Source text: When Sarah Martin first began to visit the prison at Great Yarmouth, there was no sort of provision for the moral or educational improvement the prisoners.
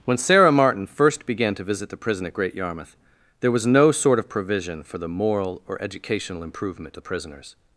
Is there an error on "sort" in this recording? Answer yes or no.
no